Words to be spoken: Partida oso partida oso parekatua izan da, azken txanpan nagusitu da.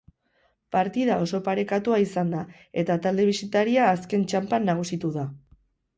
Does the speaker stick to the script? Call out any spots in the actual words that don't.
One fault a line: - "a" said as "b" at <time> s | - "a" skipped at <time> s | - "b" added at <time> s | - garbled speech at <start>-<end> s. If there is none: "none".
- "partida oso" skipped at 1.4 s
- "eta talde bisitaria" added at 2.9 s